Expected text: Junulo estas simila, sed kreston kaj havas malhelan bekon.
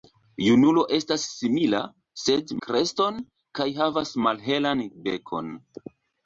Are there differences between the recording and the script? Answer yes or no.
no